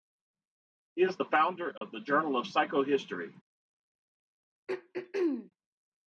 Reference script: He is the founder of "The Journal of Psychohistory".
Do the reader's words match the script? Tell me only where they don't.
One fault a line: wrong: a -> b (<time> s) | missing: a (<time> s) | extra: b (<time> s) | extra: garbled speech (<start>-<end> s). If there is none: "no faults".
no faults